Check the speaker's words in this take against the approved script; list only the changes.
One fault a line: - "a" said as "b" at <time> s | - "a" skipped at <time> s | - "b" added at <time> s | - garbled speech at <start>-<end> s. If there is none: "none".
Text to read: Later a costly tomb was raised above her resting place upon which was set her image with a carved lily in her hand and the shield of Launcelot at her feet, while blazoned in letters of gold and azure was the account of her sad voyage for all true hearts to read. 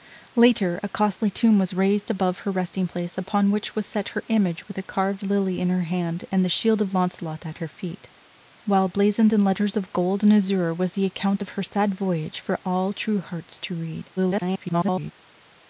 - garbled speech at 14.2-15.1 s